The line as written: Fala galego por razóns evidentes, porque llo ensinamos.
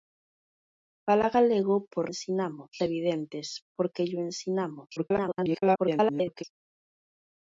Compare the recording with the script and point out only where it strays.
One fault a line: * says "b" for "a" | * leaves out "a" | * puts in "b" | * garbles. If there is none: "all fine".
* says "ensinamos" for "razóns"
* garbles